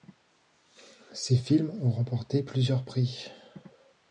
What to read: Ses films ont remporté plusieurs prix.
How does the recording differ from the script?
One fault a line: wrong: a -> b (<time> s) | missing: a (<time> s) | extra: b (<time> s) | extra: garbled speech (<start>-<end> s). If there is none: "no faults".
no faults